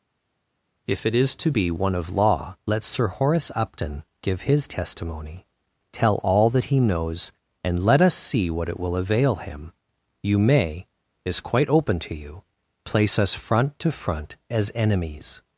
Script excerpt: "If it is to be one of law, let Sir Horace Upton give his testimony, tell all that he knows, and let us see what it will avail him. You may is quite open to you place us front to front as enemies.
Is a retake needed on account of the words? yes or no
no